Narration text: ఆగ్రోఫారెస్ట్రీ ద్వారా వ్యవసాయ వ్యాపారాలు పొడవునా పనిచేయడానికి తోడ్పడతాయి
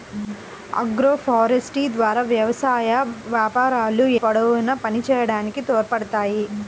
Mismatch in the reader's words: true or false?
false